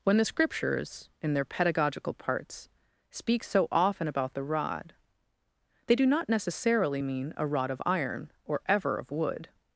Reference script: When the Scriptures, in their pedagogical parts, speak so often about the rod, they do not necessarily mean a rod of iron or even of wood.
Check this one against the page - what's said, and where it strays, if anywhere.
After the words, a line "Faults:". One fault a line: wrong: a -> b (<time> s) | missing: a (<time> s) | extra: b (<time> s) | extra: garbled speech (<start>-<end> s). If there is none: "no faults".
When the Scriptures, in their pedagogical parts, speak so often about the rod, they do not necessarily mean a rod of iron or ever of wood.
Faults:
wrong: even -> ever (8.7 s)